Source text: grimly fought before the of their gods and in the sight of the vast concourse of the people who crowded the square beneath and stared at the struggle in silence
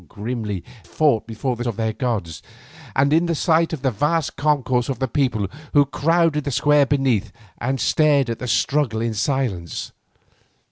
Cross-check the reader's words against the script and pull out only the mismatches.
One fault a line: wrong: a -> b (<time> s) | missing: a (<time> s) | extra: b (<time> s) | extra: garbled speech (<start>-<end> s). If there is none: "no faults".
no faults